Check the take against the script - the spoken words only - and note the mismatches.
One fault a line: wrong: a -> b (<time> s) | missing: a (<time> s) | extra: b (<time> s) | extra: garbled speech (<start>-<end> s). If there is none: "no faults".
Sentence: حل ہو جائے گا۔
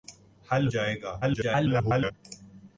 missing: ہو (0.7 s)
extra: garbled speech (1.2-2.1 s)